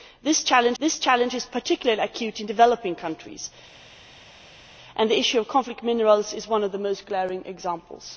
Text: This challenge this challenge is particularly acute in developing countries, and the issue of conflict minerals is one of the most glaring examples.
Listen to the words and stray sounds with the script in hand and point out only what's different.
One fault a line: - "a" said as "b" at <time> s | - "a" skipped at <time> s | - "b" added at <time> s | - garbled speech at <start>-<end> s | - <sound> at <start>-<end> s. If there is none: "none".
none